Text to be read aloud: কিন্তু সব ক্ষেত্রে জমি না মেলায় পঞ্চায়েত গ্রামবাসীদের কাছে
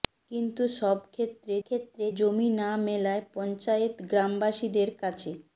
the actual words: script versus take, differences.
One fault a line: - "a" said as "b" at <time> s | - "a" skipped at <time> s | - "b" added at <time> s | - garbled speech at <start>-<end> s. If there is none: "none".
- "ক্ষেত্রে" added at 1.6 s